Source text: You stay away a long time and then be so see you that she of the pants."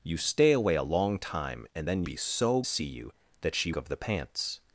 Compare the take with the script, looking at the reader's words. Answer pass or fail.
pass